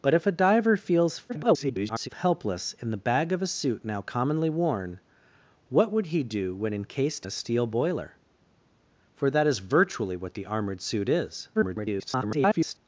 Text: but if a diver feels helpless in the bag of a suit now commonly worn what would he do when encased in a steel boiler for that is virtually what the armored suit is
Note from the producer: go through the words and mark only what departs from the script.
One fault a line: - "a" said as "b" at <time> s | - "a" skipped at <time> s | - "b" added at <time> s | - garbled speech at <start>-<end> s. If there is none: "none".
- garbled speech at 1.3-2.1 s
- "in" skipped at 7.3 s
- garbled speech at 11.5-12.8 s